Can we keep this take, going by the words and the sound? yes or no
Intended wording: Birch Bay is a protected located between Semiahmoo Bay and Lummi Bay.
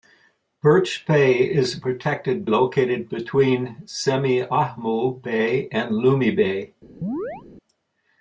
no